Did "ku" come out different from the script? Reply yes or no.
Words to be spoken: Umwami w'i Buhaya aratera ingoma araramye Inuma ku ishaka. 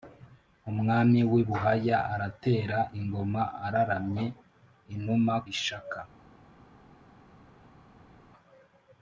yes